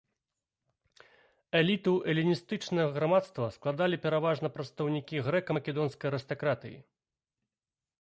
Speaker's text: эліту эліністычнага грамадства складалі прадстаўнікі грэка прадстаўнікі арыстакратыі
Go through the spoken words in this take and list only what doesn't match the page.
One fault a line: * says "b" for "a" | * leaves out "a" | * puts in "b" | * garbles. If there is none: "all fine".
* puts in "пераважна"
* says "македонскай" for "прадстаўнікі"